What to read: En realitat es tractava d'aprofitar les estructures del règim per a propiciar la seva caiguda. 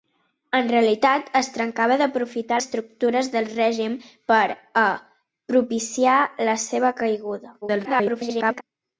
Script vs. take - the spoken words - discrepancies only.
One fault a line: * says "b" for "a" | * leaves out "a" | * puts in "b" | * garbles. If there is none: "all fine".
* leaves out "les"
* garbles